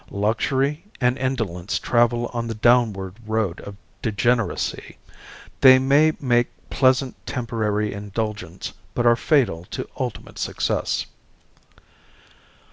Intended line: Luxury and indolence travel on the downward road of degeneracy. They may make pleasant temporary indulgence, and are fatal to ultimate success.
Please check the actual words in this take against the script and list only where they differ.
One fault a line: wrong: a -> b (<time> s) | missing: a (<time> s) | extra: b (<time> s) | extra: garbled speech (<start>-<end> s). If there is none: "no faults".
wrong: and -> but (8.9 s)